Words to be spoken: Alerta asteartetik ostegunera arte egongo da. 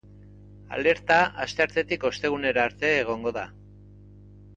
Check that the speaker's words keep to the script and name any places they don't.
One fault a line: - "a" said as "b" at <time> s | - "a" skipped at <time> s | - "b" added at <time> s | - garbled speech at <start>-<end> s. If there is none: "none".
none